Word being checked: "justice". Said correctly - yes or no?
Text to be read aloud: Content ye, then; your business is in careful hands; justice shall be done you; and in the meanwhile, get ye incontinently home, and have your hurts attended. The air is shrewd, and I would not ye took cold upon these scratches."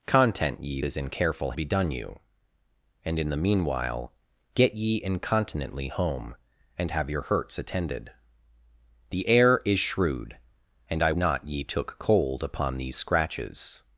no